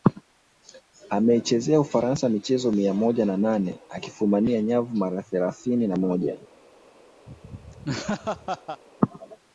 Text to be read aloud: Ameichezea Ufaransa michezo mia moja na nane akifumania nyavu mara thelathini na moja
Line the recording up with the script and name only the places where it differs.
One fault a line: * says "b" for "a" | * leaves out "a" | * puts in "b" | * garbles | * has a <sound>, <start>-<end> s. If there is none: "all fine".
* has a laugh, 7.3-8.8 s